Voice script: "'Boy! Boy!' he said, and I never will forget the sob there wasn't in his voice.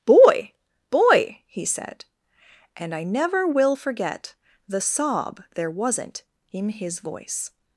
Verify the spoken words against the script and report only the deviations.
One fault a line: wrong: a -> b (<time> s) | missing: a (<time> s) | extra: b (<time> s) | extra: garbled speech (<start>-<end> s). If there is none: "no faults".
no faults